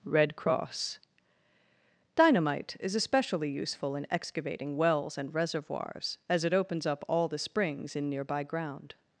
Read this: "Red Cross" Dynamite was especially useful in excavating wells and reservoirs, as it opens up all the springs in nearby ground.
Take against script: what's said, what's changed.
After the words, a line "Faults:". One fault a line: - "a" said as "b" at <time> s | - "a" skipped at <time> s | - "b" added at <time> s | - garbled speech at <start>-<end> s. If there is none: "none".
"Red Cross" Dynamite is especially useful in excavating wells and reservoirs, as it opens up all the springs in nearby ground.
Faults:
- "was" said as "is" at 2.8 s